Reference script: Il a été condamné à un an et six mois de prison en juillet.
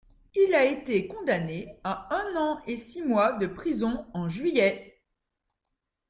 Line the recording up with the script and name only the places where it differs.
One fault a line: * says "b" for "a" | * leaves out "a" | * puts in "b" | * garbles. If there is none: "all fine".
all fine